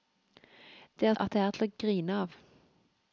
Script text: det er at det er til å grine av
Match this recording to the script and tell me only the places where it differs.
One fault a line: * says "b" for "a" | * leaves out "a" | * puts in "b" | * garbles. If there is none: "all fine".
all fine